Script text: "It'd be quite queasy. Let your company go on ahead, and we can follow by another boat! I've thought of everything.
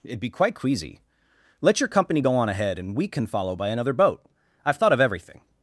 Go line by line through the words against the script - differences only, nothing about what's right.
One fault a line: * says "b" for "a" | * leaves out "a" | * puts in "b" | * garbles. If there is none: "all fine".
all fine